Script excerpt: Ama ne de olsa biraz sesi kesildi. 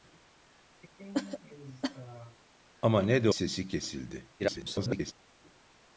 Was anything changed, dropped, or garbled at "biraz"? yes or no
yes